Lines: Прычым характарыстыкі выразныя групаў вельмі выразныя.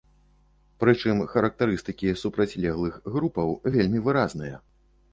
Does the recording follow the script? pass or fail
fail